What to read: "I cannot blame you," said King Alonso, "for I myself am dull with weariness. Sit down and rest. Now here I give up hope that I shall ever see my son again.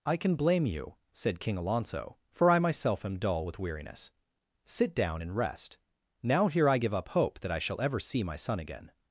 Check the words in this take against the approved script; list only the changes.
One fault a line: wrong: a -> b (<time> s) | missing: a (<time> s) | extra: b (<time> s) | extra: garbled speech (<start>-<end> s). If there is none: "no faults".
wrong: cannot -> can (0.2 s)